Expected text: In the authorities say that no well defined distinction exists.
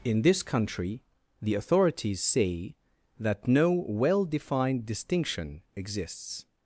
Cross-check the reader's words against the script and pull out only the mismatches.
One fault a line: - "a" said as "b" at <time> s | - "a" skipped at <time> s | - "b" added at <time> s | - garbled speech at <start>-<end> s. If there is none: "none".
- "this country" added at 0.2 s